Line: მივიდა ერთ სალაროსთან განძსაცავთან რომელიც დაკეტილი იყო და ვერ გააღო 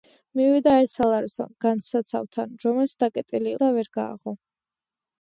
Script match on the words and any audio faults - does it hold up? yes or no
no